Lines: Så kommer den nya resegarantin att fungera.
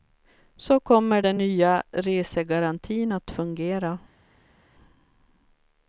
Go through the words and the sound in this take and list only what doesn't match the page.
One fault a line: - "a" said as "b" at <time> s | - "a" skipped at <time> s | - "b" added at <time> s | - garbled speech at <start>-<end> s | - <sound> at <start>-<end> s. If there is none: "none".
none